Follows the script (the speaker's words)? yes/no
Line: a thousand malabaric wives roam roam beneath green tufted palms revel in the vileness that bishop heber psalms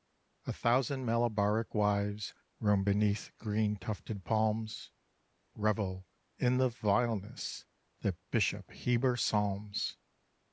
no